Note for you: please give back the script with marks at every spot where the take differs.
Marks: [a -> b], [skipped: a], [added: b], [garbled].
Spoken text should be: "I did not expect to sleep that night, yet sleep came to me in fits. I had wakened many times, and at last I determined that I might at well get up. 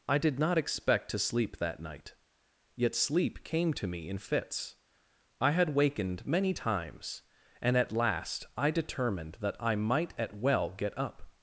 "I did not expect to sleep that night, yet sleep came to me in fits. I had wakened many times, and at last I determined that I might at well get up.